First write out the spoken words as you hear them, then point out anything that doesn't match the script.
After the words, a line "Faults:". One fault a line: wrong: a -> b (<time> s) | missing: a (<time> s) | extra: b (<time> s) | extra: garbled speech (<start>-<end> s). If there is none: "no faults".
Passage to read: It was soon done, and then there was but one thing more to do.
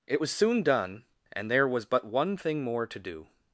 It was soon done, and there was but one thing more to do.
Faults:
missing: then (1.5 s)